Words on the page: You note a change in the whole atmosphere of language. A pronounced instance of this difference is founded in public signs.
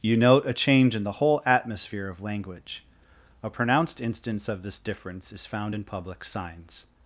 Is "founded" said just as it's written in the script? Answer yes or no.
no